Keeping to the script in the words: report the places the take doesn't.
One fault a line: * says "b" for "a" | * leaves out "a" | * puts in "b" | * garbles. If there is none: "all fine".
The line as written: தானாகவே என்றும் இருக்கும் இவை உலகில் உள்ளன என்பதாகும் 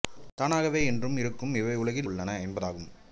all fine